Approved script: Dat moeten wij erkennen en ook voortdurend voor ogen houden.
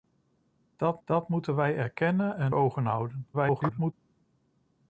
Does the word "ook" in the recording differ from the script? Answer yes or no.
yes